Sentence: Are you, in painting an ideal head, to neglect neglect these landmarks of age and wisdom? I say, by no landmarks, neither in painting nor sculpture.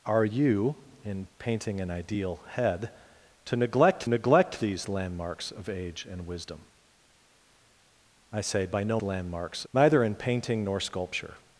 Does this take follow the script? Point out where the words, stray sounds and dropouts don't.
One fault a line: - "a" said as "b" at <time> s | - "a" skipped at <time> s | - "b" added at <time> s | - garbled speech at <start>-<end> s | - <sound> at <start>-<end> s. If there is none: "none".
none